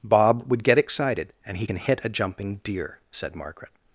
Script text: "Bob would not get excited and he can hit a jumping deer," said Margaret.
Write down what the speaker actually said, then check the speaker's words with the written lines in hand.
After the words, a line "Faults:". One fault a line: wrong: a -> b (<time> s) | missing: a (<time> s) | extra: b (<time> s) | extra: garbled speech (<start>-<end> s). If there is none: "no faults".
"Bob would get excited and he can hit a jumping deer," said Margaret.
Faults:
missing: not (0.6 s)